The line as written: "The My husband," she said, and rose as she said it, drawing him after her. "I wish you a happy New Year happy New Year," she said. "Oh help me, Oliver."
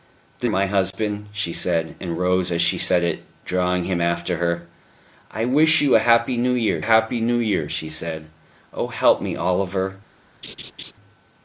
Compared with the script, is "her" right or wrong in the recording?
right